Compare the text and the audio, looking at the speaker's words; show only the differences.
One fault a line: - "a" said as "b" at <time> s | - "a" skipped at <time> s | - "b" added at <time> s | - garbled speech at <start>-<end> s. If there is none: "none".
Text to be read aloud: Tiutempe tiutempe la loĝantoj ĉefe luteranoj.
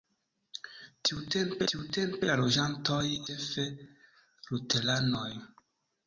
none